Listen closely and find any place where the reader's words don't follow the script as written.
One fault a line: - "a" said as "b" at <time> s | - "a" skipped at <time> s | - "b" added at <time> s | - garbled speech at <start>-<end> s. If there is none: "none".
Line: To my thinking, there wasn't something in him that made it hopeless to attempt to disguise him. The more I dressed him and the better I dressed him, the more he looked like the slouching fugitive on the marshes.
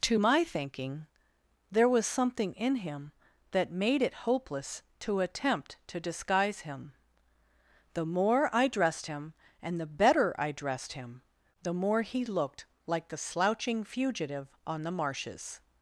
- "wasn't" said as "was" at 1.9 s